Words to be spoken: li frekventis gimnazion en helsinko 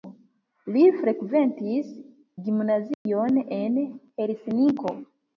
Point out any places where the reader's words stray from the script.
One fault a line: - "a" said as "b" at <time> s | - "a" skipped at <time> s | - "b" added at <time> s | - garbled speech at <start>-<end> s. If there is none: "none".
none